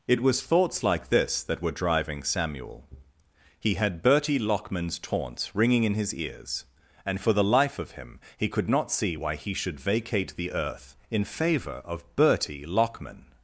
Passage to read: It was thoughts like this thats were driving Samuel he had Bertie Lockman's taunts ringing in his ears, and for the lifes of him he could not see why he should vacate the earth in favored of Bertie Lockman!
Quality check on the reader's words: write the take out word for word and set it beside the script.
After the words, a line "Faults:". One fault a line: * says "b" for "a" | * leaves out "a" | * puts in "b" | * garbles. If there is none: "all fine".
It was thoughts like this that were driving Samuel he had Bertie Lockman's taunts ringing in his ears, and for the life of him he could not see why he should vacate the earth in favor of Bertie Lockman!
Faults:
* says "that" for "thats"
* says "life" for "lifes"
* says "favor" for "favored"